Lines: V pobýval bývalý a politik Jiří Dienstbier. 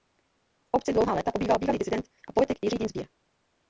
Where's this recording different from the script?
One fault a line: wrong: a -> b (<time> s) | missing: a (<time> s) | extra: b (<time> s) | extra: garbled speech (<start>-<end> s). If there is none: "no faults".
extra: obci dlouhá léta (0.7 s)
extra: disident (1.8 s)